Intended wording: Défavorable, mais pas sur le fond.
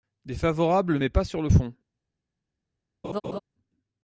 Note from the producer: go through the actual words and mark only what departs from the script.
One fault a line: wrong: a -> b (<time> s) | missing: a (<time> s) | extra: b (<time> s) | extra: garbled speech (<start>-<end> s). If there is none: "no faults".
no faults